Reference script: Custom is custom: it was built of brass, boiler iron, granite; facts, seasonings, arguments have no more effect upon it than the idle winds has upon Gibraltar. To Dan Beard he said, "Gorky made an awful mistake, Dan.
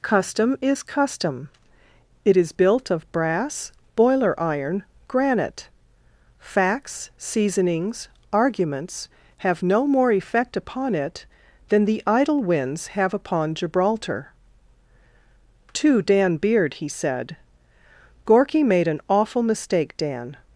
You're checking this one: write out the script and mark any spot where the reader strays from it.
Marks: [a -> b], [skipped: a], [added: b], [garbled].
Custom is custom: it [was -> is] built of brass, boiler iron, granite; facts, seasonings, arguments have no more effect upon it than the idle winds [has -> have] upon Gibraltar. To Dan Beard he said, "Gorky made an awful mistake, Dan.